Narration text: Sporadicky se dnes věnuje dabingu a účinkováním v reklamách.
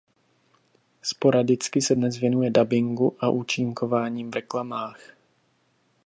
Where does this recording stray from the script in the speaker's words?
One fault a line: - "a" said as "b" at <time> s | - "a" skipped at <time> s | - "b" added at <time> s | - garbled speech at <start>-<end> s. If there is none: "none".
none